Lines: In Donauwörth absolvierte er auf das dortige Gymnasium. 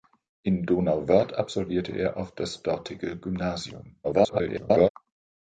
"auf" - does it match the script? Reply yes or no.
yes